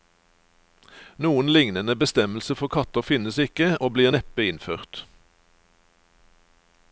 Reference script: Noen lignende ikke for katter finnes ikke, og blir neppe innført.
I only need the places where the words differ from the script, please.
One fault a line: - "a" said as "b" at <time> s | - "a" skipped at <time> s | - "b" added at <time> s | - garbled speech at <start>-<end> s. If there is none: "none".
- "ikke" said as "bestemmelse" at 1.9 s